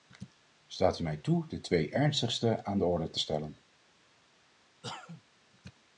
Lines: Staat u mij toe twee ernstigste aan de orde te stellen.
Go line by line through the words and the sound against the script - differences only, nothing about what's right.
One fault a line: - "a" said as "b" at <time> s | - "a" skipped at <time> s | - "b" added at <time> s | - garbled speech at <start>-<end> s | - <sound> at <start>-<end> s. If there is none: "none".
- "de" added at 1.5 s
- cough at 4.8-5.2 s